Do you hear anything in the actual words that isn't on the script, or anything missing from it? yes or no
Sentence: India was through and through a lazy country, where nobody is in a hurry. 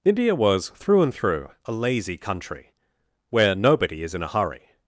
no